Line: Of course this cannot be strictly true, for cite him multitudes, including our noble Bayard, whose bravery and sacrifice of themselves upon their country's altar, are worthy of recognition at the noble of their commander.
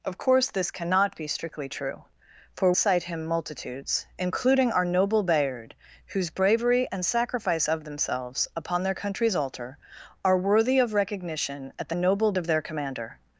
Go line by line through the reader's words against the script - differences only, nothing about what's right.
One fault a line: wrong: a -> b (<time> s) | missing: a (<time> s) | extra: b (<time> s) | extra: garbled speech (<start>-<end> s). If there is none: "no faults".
no faults